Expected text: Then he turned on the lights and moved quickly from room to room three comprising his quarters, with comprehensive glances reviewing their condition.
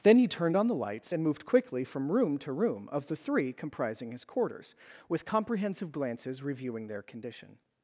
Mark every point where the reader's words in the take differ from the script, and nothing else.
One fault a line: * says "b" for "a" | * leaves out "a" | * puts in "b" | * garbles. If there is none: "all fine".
* puts in "of the"